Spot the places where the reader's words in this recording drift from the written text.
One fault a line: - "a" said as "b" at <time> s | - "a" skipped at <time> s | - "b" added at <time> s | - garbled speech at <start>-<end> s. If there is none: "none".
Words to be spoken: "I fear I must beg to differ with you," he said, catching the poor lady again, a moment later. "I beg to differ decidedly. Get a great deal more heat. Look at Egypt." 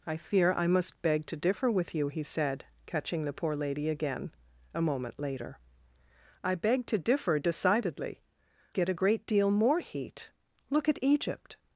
none